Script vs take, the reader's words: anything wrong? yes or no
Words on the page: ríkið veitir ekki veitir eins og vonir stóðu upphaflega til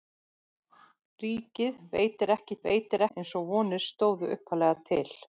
no